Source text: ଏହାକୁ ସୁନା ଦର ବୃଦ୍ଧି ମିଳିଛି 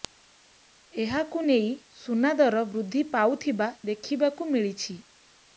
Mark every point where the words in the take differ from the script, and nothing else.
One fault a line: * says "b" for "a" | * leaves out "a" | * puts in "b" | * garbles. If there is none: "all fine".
* puts in "ନେଇ"
* puts in "ପାଉଥିବା ଦେଖିବାକୁ"